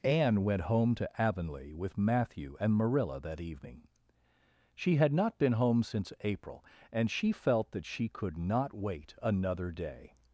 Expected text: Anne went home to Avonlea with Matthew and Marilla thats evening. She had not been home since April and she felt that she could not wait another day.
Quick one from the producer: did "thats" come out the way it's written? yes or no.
no